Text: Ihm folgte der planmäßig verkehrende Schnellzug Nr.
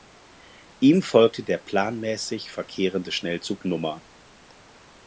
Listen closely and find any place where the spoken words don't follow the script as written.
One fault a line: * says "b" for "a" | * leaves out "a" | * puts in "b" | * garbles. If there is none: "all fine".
all fine